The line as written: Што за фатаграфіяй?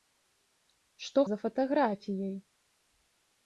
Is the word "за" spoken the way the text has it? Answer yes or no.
yes